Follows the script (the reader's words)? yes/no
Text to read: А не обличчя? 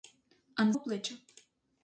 yes